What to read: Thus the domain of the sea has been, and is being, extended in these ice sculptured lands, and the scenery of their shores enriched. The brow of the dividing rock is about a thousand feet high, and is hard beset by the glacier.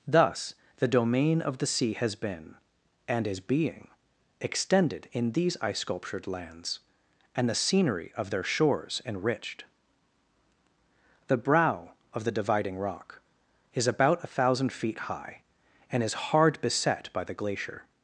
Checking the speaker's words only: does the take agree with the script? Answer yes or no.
yes